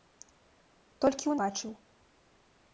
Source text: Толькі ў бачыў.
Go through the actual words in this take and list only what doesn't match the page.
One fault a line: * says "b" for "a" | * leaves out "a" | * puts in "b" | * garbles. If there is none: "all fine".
all fine